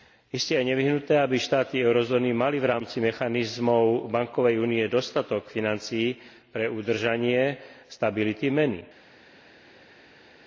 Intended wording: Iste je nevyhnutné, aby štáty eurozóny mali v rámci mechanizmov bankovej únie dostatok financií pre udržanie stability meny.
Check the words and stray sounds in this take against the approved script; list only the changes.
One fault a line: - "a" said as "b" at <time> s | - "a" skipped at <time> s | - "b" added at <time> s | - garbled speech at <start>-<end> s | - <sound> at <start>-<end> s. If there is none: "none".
none